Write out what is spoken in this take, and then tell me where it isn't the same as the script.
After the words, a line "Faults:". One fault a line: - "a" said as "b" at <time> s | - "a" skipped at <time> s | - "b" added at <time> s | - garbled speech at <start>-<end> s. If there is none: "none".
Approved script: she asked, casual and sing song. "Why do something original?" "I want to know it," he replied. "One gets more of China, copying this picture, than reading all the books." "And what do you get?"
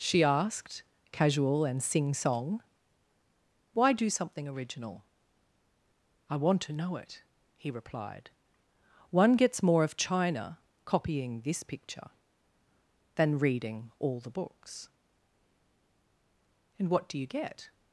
she asked, casual and sing song. "Why do something original?" "I want to know it," he replied. "One gets more of China, copying this picture, than reading all the books." "And what do you get?"
Faults:
none